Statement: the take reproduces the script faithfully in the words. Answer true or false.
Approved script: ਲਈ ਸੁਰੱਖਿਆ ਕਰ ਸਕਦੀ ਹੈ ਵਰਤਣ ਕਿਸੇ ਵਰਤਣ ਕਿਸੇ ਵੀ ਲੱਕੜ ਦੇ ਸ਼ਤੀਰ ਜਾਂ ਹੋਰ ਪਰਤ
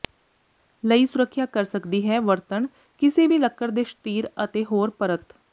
false